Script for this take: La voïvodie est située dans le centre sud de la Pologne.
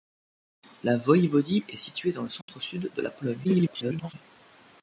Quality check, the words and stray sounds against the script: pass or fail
fail